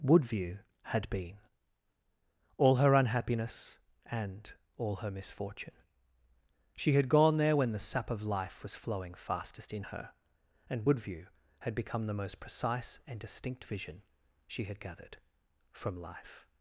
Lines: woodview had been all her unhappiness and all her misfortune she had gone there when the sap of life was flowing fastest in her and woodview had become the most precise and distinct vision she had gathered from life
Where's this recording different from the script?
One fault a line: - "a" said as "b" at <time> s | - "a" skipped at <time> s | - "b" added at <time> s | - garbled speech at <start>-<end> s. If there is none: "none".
none